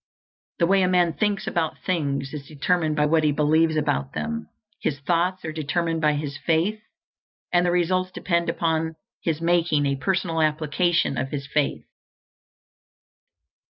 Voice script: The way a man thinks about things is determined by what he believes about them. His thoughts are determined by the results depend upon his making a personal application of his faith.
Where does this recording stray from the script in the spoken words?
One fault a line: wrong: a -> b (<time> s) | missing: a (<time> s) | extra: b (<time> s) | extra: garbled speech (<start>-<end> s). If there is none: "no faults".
extra: his faith and (6.1 s)